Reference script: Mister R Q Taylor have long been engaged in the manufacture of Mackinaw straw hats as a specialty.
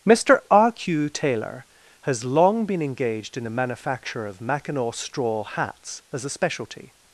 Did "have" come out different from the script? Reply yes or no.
yes